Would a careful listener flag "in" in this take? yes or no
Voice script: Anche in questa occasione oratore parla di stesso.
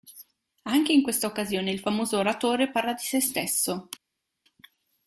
no